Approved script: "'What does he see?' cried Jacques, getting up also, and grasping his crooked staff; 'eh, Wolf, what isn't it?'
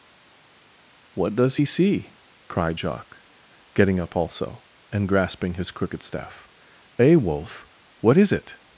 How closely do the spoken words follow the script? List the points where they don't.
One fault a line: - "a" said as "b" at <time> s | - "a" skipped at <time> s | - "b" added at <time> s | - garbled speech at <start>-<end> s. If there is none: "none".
- "isn't" said as "is" at 8.2 s